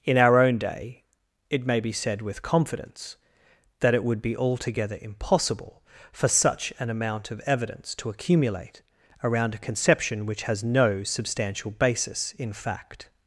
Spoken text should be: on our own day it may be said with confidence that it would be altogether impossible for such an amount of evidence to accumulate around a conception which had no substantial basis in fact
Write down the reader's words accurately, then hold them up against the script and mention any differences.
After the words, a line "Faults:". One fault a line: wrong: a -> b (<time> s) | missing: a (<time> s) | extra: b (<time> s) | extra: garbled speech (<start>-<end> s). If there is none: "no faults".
in our own day it may be said with confidence that it would be altogether impossible for such an amount of evidence to accumulate around a conception which has no substantial basis in fact
Faults:
wrong: on -> in (0.0 s)
wrong: had -> has (10.4 s)